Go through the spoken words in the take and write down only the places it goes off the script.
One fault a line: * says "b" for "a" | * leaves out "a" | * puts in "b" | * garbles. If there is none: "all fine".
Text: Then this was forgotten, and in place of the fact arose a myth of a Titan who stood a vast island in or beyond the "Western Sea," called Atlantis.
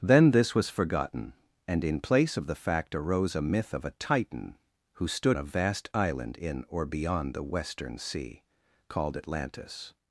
all fine